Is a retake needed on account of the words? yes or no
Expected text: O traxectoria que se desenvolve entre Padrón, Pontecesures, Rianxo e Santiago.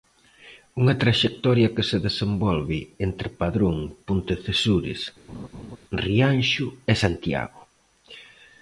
yes